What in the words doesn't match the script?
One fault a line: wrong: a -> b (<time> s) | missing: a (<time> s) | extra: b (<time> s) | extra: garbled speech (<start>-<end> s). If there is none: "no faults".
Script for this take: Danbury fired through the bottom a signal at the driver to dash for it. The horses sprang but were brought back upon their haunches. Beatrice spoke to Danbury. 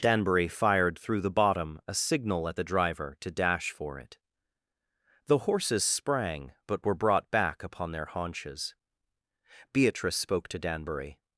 no faults